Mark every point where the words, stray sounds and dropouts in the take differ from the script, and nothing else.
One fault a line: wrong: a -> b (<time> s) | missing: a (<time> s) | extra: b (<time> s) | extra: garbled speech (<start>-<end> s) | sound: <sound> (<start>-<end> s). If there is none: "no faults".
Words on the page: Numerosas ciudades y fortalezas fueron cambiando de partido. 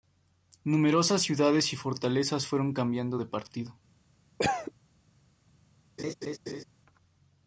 sound: cough (4.4-4.7 s)
sound: laugh (6.0-6.6 s)